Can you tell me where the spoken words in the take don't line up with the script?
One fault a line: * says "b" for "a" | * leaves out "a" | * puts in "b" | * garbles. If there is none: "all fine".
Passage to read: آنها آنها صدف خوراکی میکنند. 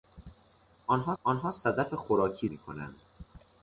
all fine